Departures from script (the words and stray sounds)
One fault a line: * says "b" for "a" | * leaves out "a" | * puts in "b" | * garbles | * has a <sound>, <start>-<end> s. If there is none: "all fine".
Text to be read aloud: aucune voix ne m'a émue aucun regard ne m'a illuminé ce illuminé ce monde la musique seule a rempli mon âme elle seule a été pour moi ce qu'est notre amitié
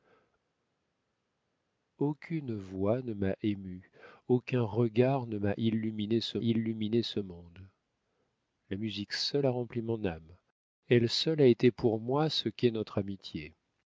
all fine